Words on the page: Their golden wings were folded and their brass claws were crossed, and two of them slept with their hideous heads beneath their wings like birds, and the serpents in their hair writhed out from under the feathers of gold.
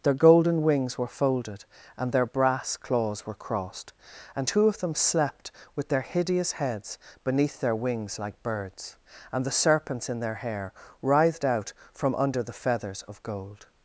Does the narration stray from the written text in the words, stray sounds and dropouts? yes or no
no